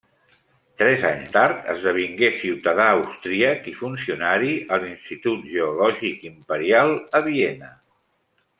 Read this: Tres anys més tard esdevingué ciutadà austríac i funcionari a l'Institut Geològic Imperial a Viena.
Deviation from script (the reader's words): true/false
true